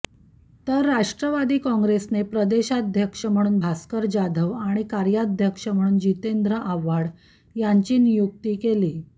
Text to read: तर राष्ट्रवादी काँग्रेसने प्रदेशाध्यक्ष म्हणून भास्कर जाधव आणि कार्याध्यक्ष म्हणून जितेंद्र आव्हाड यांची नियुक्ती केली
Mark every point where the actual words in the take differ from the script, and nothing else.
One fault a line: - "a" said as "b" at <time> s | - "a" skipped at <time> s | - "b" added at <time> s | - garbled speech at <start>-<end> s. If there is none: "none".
none